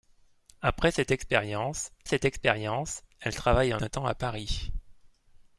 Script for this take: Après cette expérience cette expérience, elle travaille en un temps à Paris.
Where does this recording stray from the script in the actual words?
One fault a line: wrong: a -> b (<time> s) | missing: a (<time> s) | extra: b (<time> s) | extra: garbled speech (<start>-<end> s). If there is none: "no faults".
no faults